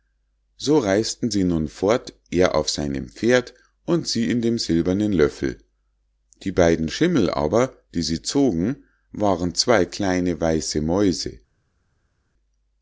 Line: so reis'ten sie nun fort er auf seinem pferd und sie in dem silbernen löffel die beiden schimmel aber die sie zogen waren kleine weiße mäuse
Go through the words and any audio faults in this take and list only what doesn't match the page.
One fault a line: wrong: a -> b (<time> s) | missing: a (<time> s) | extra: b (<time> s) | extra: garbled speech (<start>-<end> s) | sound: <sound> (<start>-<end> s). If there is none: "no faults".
extra: zwei (9.5 s)